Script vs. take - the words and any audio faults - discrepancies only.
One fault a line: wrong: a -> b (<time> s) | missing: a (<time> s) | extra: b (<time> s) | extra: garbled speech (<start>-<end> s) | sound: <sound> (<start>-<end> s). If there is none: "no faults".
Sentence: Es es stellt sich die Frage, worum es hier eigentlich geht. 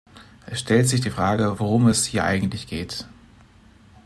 missing: es (0.6 s)